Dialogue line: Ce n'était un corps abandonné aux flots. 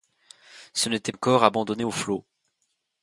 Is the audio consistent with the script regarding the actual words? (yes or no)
yes